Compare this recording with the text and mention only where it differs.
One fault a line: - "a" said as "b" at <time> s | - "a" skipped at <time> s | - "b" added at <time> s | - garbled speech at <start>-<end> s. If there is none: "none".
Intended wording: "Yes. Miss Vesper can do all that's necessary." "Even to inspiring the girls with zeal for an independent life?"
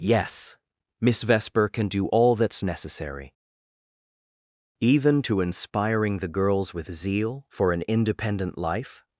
none